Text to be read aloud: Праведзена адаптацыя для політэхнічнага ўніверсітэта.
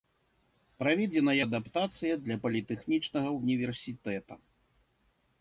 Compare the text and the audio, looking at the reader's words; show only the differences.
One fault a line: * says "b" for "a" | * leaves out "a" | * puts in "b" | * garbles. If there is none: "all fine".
all fine